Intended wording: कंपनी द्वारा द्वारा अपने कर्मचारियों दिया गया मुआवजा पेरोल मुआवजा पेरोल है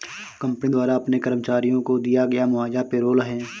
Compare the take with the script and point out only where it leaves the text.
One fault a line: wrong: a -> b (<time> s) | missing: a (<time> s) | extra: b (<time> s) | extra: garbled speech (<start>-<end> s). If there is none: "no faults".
missing: द्वारा (1.0 s)
extra: को (1.8 s)
missing: मुआवजा पेरोल (3.2 s)